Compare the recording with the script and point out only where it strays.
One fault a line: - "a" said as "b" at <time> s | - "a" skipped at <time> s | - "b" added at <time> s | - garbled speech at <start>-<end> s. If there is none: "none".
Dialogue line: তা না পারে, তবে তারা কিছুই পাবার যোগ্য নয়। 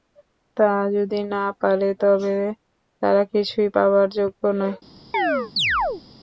- "যদি" added at 0.9 s